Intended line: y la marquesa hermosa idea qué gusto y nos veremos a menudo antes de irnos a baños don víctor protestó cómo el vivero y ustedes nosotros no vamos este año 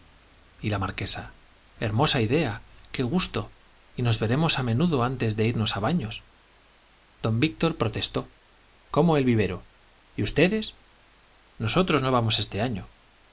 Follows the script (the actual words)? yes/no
yes